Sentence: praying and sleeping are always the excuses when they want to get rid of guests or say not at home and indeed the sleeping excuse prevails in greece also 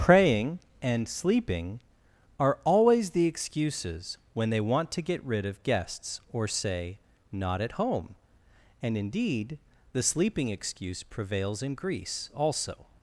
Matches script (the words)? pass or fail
pass